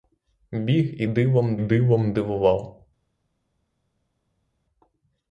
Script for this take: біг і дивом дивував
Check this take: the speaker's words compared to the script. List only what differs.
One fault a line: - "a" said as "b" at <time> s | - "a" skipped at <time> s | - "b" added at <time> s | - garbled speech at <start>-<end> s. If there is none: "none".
- "дивом" added at 1.6 s